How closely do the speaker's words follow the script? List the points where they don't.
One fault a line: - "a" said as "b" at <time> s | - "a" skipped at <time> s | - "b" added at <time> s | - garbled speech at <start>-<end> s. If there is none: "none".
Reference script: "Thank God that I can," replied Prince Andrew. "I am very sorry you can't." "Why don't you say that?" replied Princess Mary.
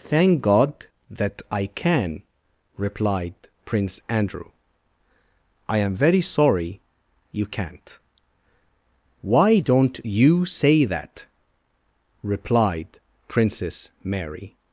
none